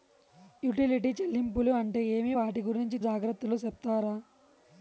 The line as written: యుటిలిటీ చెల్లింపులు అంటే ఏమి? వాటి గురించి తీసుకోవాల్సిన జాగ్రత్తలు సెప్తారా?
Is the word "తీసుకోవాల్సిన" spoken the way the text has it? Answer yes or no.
no